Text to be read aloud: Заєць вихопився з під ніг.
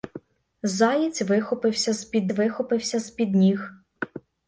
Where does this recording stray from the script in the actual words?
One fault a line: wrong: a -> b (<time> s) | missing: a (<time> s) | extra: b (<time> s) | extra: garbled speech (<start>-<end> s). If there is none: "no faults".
extra: вихопився з під (2.3 s)